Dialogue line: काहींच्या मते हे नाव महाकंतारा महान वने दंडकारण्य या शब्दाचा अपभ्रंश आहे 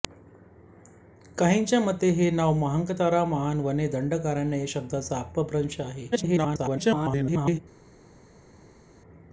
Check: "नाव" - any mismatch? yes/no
no